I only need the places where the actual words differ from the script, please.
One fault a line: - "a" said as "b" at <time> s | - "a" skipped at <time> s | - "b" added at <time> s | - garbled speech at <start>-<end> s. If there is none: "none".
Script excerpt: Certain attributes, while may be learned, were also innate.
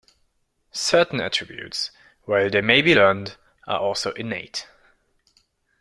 - "they" added at 2.5 s
- "were" said as "are" at 3.7 s